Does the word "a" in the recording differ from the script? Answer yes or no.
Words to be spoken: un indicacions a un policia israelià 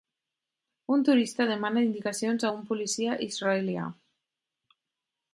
no